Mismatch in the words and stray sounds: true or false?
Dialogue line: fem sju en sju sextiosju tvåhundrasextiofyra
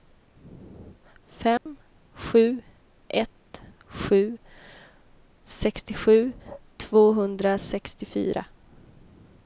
true